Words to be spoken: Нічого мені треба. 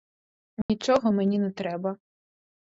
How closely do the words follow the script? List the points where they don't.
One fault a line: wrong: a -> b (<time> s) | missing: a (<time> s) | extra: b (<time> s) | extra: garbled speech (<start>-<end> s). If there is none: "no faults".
extra: не (1.4 s)